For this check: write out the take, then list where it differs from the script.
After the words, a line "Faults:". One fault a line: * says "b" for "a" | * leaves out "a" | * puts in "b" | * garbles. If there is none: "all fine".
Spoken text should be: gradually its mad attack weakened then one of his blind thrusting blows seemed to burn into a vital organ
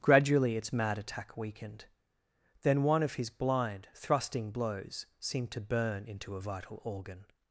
gradually its mad attack weakened then one of his blind thrusting blows seemed to burn into a vital organ
Faults:
all fine